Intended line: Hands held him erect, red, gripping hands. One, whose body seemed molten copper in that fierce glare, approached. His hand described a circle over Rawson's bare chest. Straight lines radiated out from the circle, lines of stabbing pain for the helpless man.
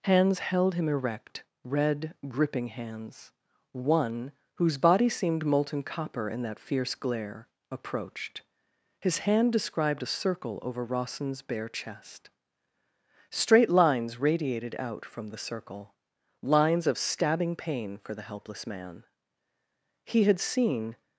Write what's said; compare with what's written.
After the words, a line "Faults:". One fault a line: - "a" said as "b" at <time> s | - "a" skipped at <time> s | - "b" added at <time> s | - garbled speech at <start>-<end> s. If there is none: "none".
Hands held him erect, red, gripping hands. One, whose body seemed molten copper in that fierce glare, approached. His hand described a circle over Rawson's bare chest. Straight lines radiated out from the circle, lines of stabbing pain for the helpless man. He had seen
Faults:
- "He had seen" added at 20.1 s